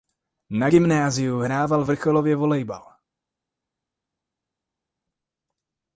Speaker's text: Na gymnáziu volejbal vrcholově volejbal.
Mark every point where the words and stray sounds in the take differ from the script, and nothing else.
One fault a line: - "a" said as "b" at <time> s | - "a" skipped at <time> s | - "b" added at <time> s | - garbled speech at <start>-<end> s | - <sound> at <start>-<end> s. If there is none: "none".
- "volejbal" said as "hrával" at 1.4 s